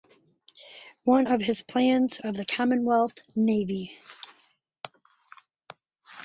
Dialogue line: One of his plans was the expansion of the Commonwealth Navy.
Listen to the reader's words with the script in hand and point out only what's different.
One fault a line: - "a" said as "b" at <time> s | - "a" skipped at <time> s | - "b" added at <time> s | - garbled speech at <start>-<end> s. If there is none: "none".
- "was the expansion" skipped at 2.2 s